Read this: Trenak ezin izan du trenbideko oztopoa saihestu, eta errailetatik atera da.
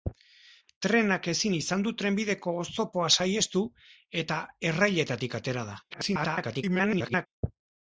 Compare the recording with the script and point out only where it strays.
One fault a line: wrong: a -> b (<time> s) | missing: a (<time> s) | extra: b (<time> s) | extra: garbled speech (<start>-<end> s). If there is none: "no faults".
extra: garbled speech (5.9-7.3 s)